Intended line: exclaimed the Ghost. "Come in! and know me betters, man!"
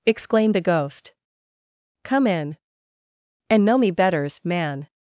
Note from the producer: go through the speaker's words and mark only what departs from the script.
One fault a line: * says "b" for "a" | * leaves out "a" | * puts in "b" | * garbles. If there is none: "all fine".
all fine